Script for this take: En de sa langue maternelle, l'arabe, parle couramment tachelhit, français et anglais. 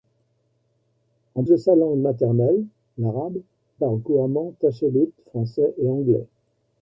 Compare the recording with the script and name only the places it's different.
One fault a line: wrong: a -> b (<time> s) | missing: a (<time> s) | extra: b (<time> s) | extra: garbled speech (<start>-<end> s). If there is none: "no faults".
no faults